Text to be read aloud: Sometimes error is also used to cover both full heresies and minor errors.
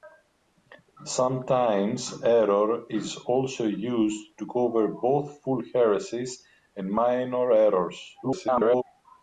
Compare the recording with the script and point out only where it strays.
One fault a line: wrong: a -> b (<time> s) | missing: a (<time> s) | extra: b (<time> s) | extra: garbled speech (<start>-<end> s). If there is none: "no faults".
extra: garbled speech (8.2-8.8 s)